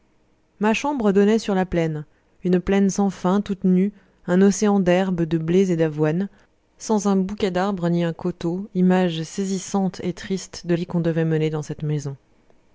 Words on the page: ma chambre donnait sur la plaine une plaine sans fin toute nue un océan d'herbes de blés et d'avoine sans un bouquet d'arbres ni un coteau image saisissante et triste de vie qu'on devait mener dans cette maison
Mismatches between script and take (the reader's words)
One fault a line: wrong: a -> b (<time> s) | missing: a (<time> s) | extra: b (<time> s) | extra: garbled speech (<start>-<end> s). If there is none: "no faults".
no faults